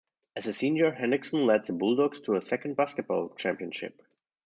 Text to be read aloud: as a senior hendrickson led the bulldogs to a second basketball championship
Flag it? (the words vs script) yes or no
no